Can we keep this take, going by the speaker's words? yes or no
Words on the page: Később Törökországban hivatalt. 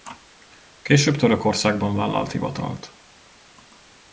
no